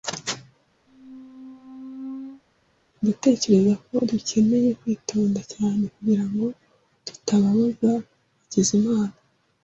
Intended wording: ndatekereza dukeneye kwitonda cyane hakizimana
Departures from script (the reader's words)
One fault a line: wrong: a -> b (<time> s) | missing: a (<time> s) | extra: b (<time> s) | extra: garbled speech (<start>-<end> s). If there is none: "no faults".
extra: ko (3.8 s)
extra: kugirango tutababaza (5.9 s)